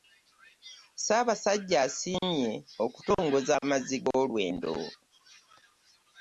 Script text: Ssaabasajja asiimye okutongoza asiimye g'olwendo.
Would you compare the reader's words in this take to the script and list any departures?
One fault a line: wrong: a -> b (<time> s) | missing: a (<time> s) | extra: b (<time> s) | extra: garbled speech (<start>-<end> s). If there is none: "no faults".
wrong: asiimye -> amazzi (3.6 s)